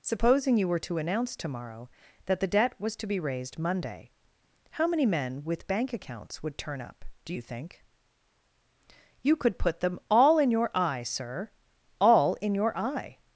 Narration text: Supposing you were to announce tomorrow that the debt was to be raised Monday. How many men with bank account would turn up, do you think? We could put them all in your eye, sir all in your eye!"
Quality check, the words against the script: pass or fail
fail